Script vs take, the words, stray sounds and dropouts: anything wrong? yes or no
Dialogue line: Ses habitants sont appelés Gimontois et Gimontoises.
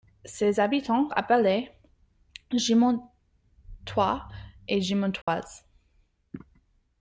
yes